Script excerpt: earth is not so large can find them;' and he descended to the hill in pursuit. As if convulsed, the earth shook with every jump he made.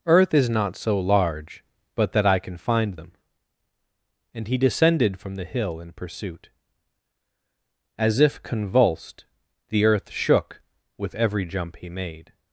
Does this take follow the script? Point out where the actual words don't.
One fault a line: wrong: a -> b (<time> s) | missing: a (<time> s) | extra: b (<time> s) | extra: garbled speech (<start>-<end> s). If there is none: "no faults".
extra: but that I (1.9 s)
wrong: to -> from (5.2 s)